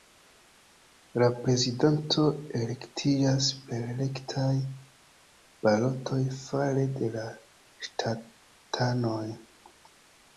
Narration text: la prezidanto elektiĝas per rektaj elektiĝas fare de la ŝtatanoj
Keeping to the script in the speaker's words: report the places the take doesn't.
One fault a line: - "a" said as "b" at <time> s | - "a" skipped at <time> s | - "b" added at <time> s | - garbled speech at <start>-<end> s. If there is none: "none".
- "elektiĝas" said as "balotoj" at 5.7 s